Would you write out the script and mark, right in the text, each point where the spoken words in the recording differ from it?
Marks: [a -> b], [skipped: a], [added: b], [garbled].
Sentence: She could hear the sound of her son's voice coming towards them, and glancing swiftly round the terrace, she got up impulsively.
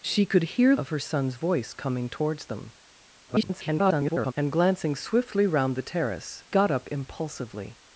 She could hear [skipped: the sound] of her son's voice coming towards them, [garbled] and glancing swiftly round the terrace, [skipped: she] got up impulsively.